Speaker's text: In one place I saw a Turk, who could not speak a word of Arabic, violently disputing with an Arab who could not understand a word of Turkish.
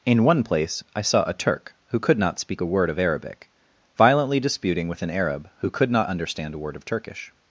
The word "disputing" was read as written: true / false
true